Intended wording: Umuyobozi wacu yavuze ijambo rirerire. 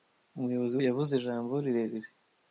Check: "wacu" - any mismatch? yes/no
yes